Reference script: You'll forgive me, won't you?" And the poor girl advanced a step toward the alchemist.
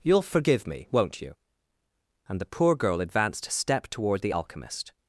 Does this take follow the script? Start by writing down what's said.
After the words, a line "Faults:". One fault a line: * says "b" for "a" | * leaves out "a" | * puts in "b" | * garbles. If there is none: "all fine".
You'll forgive me, won't you?" And the poor girl advanced a step toward the alchemist.
Faults:
all fine